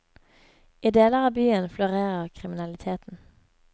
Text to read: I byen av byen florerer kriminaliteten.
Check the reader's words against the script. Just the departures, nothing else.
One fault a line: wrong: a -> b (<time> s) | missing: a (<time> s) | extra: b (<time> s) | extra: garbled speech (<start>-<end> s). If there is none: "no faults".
wrong: byen -> deler (0.9 s)